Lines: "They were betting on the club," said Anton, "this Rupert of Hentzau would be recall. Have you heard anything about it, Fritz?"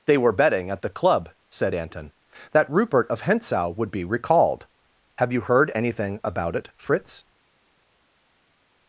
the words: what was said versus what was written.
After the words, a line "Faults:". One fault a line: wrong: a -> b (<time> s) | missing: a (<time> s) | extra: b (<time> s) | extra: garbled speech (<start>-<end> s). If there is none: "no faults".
"They were betting at the club," said Anton, "that Rupert of Hentzau would be recalled. Have you heard anything about it, Fritz?"
Faults:
wrong: on -> at (0.7 s)
wrong: this -> that (2.5 s)
wrong: recall -> recalled (4.0 s)